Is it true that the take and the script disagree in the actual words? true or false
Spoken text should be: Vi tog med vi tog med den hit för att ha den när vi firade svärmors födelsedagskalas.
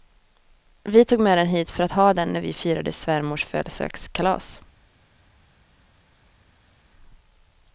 true